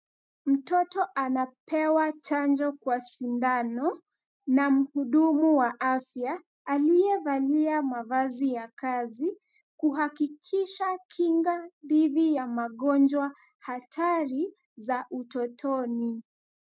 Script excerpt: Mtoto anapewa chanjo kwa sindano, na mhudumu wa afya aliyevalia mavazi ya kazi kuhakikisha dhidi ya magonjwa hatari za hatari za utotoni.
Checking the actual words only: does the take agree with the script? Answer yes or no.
no